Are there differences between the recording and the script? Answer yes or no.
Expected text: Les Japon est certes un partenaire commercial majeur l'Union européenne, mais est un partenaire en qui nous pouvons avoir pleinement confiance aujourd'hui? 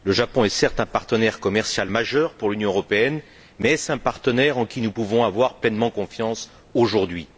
yes